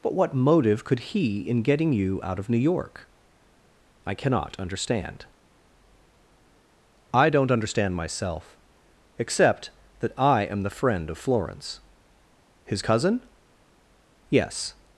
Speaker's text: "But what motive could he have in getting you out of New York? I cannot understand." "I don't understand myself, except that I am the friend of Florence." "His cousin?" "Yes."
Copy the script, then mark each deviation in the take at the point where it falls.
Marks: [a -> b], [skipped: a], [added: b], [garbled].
"But what motive could he [skipped: have] in getting you out of New York? I cannot understand." "I don't understand myself, except that I am the friend of Florence." "His cousin?" "Yes."